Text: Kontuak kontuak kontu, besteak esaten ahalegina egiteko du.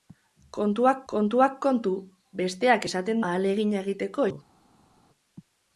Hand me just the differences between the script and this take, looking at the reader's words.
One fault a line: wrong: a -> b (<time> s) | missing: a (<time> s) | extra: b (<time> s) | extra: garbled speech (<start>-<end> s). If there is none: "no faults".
no faults